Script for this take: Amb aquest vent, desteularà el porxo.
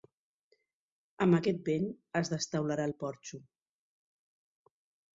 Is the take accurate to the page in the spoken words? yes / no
no